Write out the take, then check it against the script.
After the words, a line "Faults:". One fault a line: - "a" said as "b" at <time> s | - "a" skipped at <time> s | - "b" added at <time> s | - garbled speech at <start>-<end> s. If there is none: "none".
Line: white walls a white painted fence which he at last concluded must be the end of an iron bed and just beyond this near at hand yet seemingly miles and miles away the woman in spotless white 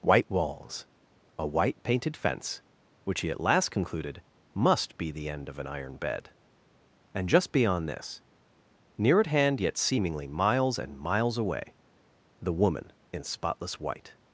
white walls a white painted fence which he at last concluded must be the end of an iron bed and just beyond this near at hand yet seemingly miles and miles away the woman in spotless white
Faults:
none